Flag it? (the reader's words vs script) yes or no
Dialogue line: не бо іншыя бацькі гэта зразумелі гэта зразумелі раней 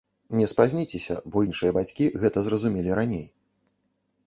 yes